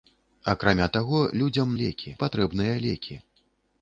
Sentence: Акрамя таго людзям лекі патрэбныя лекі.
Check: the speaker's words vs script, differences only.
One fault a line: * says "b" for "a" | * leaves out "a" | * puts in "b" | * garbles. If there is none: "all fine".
all fine